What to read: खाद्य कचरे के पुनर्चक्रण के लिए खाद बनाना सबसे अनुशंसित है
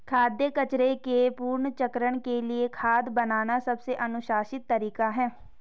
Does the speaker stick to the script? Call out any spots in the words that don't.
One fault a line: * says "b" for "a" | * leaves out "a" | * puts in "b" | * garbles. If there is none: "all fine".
* puts in "तरीका"